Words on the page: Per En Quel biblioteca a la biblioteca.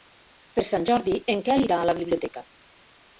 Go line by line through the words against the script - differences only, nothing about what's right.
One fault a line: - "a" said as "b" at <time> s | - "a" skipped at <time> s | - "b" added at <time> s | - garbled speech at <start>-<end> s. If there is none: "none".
- "Sant Jordi" added at 0.7 s
- "biblioteca" said as "irà" at 1.7 s